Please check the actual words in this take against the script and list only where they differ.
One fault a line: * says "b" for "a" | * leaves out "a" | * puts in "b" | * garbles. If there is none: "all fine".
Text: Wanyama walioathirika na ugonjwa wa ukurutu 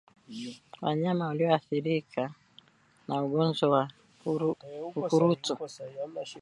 all fine